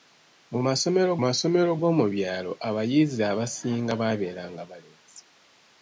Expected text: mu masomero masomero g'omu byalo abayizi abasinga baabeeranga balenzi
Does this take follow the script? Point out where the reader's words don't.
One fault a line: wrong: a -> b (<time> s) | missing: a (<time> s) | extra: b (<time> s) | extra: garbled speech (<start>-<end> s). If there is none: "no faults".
no faults